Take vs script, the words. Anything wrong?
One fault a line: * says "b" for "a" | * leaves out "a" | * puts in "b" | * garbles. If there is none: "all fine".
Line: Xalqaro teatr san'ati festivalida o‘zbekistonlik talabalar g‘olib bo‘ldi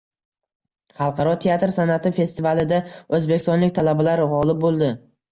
all fine